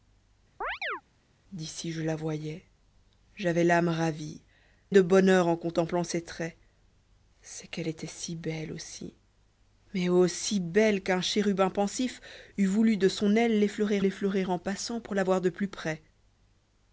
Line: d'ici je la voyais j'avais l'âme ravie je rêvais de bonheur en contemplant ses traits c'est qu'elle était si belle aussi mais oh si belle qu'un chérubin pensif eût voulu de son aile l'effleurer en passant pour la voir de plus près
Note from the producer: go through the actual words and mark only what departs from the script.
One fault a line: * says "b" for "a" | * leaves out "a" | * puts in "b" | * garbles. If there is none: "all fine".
* leaves out "je rêvais"
* puts in "l'effleurer"